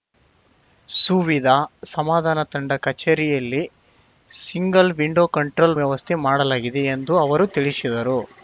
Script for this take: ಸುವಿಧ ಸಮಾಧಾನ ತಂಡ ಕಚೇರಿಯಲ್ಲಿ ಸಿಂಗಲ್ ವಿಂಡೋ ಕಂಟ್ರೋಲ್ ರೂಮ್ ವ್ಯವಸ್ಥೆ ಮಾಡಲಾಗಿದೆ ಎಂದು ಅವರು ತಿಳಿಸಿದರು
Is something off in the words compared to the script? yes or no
yes